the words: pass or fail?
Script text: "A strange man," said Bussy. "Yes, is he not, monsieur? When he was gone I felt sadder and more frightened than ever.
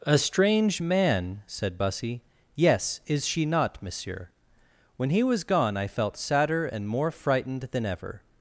fail